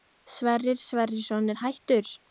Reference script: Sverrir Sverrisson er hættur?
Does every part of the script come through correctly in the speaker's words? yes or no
yes